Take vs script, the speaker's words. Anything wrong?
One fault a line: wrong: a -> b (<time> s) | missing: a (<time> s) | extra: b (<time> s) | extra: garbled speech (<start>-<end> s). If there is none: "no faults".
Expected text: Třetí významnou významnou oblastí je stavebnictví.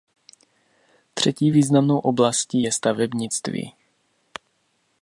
missing: významnou (2.0 s)